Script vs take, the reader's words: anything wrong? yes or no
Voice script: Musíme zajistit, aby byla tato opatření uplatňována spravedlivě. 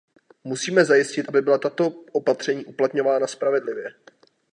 no